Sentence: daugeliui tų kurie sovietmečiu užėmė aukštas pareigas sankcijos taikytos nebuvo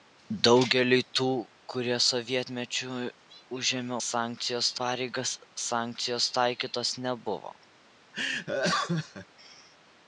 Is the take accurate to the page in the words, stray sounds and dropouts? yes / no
no